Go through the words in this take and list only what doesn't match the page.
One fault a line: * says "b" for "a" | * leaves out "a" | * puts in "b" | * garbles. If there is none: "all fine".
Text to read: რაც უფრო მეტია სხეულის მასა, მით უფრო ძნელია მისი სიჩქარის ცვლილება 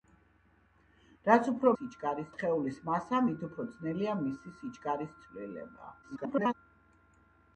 * says "სიჩქარის" for "მეტია"
* garbles